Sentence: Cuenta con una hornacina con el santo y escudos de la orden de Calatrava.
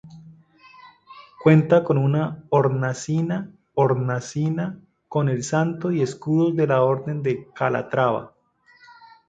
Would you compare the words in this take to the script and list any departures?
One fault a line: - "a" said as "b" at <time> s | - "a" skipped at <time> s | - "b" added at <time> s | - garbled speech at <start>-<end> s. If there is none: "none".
- "hornacina" added at 3.7 s